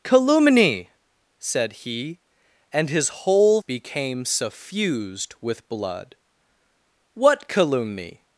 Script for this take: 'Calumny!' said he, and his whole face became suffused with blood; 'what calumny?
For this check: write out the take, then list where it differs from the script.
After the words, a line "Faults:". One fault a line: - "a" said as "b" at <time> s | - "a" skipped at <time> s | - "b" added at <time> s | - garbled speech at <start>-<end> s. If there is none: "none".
'Calumny!' said he, and his whole became suffused with blood; 'what calumny?
Faults:
- "face" skipped at 3.6 s